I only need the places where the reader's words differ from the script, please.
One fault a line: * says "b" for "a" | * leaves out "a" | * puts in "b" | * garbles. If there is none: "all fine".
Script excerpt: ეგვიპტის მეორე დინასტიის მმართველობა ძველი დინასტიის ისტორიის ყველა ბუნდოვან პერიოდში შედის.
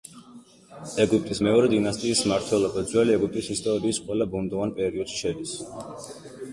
* says "ეგვიპტის" for "დინასტიის"